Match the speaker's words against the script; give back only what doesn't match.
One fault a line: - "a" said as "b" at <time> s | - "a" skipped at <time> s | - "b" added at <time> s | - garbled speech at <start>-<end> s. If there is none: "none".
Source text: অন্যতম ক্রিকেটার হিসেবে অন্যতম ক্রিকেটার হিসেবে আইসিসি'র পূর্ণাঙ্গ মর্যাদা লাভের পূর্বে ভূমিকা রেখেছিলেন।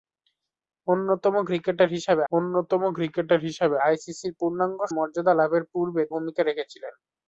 none